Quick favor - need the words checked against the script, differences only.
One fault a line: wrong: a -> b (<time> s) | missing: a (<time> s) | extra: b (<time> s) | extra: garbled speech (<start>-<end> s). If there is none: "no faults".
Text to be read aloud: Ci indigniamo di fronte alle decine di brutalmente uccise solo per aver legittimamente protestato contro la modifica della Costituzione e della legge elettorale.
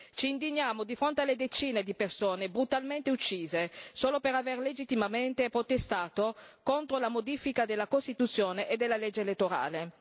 extra: persone (1.9 s)